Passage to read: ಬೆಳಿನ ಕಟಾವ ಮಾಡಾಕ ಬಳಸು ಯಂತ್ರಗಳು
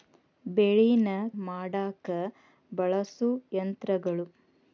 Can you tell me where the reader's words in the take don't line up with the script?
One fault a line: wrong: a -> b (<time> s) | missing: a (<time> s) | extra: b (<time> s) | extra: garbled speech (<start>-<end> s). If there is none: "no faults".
missing: ಕಟಾವ (1.1 s)